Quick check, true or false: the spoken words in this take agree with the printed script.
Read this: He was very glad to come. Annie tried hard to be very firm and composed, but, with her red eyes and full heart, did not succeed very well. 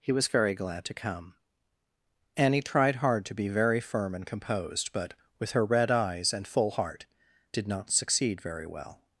true